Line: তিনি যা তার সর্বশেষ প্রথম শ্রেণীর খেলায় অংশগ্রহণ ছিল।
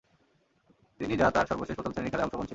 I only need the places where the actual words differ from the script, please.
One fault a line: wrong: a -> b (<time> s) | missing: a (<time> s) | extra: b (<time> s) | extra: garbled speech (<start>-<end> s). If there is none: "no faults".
no faults